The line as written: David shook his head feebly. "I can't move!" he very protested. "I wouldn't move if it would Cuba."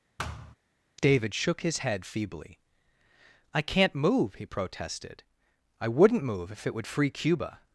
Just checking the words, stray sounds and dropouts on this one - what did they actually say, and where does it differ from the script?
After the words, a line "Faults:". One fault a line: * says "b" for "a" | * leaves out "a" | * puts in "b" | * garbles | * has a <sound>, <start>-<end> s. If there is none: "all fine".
David shook his head feebly. "I can't move!" he protested. "I wouldn't move if it would free Cuba."
Faults:
* has a thud, 0.2-0.6 s
* leaves out "very"
* puts in "free"